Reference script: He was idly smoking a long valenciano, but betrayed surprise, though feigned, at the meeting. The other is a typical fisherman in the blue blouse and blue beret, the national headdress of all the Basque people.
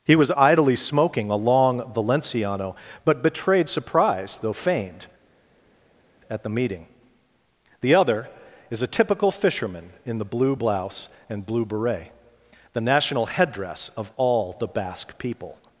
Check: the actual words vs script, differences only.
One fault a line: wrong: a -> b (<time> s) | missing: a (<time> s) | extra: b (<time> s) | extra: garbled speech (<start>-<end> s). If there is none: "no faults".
no faults